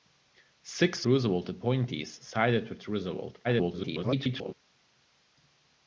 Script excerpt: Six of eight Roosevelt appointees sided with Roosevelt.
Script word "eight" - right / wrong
wrong